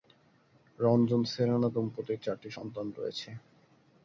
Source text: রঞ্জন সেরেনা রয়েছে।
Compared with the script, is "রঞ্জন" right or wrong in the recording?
right